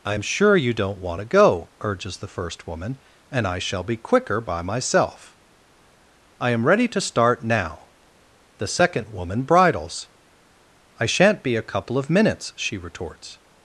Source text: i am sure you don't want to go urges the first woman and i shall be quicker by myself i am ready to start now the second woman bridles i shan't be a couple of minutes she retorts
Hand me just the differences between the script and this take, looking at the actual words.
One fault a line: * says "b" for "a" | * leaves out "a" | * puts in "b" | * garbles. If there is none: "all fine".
all fine